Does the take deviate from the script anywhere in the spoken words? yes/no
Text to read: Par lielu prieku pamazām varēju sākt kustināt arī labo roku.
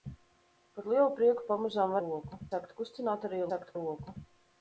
yes